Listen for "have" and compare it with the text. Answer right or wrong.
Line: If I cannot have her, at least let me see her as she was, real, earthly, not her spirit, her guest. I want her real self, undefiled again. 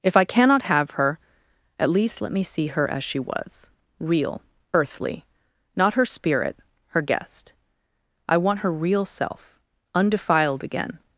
right